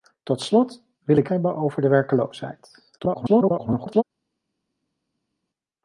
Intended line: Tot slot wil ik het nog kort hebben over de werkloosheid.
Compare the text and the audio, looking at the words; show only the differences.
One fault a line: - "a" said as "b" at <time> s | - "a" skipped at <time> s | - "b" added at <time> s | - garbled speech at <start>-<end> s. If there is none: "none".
- "het nog kort" skipped at 1.3 s
- garbled speech at 3.0-4.0 s